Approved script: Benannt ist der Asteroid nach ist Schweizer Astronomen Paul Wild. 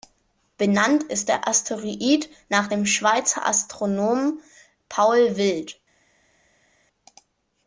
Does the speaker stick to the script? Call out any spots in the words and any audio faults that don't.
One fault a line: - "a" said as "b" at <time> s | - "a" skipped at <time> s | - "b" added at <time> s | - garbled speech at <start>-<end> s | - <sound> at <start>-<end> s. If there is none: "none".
- "ist" said as "dem" at 2.7 s